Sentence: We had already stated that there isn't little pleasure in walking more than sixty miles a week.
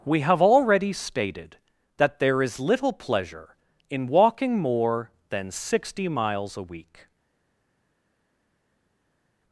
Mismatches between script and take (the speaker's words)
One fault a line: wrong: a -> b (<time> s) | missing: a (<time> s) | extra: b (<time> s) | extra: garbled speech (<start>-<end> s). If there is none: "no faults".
wrong: had -> have (0.2 s)
wrong: isn't -> is (2.4 s)